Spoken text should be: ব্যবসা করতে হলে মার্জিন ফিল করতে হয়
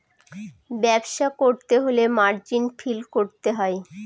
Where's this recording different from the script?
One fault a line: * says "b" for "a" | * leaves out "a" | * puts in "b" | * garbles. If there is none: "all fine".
all fine